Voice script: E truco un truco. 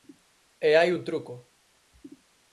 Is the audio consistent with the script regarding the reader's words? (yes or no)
no